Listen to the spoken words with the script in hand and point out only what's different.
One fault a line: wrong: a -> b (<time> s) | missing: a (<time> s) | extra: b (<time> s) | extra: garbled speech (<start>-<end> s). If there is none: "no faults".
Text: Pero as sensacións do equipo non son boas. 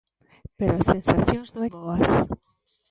missing: equipo non son (1.6 s)